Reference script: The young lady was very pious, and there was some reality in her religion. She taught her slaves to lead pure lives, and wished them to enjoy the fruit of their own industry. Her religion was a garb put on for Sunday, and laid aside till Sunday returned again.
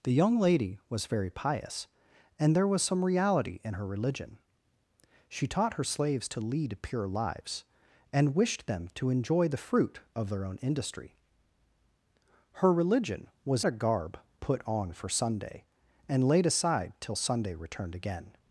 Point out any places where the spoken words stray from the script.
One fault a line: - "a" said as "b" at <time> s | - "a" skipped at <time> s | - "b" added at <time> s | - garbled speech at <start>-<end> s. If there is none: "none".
none